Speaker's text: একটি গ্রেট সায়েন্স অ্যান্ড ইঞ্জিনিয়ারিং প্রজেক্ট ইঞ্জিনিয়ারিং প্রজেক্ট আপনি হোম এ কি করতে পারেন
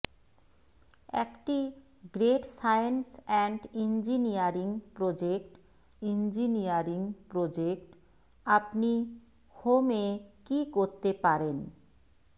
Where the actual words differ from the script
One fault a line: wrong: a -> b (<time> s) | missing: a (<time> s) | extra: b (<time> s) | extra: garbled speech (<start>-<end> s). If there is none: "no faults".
no faults